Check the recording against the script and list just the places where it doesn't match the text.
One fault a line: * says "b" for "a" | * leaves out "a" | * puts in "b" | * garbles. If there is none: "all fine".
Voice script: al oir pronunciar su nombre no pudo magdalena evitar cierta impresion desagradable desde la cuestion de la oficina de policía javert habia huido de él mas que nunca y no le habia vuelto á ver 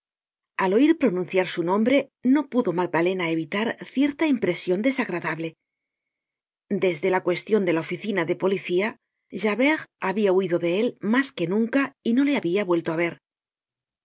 all fine